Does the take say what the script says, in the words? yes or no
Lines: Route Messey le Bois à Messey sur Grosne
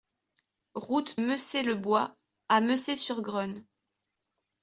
yes